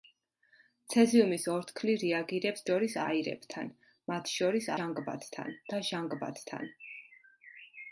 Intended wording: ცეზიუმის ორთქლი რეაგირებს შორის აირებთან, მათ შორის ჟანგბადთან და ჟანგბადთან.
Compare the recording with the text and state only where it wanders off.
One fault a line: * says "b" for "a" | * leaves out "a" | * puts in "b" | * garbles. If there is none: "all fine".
all fine